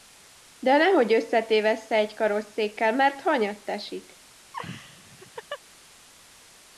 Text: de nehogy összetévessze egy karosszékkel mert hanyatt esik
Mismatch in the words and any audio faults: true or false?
true